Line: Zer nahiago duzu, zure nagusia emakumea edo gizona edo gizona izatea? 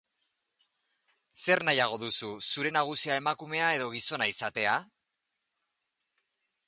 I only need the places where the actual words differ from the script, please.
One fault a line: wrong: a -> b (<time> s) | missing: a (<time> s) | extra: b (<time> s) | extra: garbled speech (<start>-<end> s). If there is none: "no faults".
missing: edo gizona (4.3 s)